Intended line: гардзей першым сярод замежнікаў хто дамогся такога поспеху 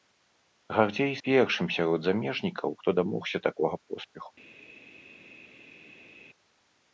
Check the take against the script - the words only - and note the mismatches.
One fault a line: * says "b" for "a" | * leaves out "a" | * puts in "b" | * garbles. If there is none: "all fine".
all fine